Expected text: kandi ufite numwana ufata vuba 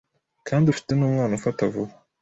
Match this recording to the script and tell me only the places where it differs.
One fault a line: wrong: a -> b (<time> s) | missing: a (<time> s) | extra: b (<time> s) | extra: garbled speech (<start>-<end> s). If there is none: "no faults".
no faults